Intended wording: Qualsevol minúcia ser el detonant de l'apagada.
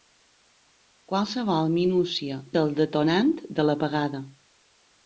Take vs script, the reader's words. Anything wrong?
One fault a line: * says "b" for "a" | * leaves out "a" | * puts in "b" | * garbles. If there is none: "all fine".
all fine